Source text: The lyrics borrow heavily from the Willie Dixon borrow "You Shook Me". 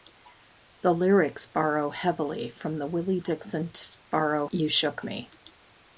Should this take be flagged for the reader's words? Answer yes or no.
no